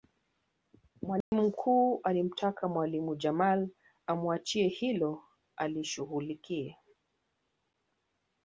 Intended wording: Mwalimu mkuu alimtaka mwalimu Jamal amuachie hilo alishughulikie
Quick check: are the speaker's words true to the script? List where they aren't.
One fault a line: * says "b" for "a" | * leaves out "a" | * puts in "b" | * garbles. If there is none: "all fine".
all fine